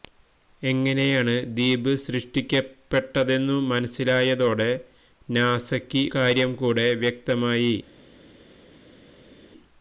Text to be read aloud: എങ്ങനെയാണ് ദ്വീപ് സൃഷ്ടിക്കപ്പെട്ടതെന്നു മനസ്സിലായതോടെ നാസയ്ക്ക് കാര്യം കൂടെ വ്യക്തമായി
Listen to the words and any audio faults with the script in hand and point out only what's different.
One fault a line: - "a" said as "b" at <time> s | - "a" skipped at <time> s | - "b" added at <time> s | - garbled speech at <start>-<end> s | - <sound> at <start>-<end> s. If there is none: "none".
none